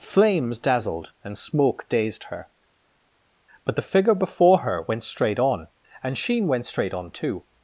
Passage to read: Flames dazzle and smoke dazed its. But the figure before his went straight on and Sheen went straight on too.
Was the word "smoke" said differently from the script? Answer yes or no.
no